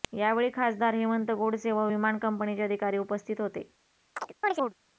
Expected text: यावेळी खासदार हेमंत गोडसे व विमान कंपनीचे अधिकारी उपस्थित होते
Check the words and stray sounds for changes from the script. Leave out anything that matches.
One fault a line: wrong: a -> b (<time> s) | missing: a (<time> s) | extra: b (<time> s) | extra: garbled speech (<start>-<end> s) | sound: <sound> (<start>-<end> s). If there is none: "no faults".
sound: chirp (4.2-4.7 s)